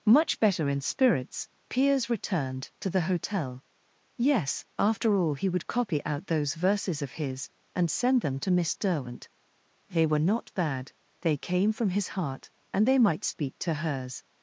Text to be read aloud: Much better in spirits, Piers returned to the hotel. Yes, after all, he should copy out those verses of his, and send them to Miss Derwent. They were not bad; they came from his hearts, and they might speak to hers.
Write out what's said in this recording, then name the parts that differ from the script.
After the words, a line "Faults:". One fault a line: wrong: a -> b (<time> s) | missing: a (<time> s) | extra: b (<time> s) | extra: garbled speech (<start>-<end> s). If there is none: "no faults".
Much better in spirits, Piers returned to the hotel. Yes, after all, he would copy out those verses of his, and send them to Miss Derwent. They were not bad; they came from his heart, and they might speak to hers.
Faults:
wrong: should -> would (5.5 s)
wrong: hearts -> heart (12.1 s)